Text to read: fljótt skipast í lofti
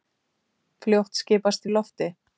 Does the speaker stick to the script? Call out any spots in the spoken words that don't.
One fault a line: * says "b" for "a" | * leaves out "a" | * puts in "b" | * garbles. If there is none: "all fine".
all fine